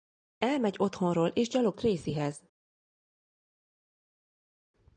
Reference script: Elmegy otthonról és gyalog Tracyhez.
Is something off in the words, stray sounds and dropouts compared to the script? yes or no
no